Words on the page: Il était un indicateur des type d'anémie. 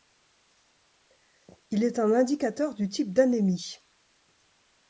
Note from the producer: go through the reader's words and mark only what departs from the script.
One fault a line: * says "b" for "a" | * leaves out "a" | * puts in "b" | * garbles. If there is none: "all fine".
* says "est" for "était"
* says "du" for "des"